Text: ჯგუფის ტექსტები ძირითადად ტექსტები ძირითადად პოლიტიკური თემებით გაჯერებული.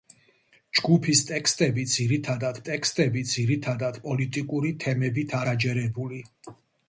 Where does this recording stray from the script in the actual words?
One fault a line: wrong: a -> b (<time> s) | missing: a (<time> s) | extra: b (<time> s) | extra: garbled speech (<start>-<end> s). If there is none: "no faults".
no faults